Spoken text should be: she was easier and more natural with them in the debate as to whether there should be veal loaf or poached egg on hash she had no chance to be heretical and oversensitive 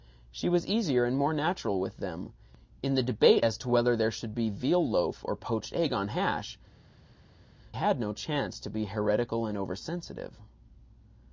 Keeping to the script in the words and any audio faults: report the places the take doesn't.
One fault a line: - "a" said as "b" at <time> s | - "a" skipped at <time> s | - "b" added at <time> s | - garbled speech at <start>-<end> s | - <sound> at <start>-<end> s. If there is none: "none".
- "she" skipped at 6.6 s